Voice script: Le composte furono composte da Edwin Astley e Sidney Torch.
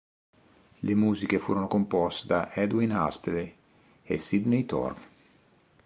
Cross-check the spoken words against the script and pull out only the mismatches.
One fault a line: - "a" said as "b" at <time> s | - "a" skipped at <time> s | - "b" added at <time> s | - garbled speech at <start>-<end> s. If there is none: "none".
- "composte" said as "musiche" at 0.9 s